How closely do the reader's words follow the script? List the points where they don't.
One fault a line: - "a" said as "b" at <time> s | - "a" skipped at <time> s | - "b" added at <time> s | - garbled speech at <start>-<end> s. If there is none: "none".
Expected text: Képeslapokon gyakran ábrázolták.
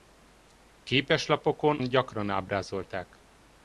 none